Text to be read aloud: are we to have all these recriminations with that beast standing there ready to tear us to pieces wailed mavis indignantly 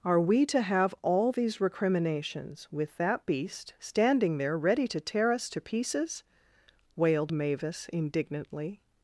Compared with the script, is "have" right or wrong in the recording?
right